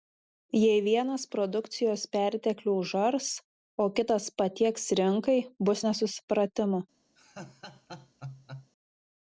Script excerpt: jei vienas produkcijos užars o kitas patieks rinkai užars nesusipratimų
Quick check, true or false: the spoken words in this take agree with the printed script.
false